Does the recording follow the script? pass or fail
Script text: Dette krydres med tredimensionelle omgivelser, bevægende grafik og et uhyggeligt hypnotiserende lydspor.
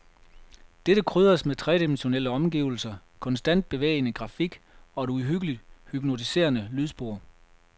fail